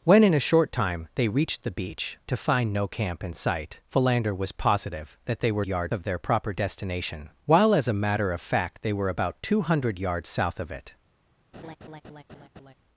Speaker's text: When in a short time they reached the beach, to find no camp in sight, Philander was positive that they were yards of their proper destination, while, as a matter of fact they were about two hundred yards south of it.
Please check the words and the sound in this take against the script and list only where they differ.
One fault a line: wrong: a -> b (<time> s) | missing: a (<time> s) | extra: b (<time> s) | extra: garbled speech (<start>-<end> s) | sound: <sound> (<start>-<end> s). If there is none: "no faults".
sound: laugh (11.5-12.7 s)